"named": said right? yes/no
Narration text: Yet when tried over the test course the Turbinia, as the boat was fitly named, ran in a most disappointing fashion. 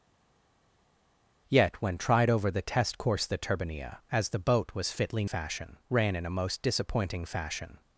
no